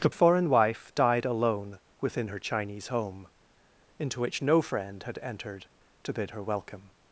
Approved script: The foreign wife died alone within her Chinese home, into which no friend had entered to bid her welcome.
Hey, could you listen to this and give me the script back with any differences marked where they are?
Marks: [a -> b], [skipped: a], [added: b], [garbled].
The foreign wife died alone within her Chinese home, into which no friend had entered to bid her welcome.